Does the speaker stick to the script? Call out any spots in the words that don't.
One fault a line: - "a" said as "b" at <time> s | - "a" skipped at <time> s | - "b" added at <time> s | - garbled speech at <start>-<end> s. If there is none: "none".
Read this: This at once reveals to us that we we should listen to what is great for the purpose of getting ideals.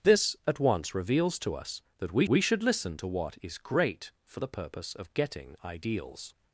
none